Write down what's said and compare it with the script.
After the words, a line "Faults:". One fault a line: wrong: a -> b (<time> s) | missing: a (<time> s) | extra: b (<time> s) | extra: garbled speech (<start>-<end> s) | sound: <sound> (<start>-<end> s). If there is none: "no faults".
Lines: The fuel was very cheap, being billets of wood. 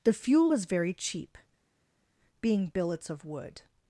The fuel was very cheap, being billets of wood.
Faults:
no faults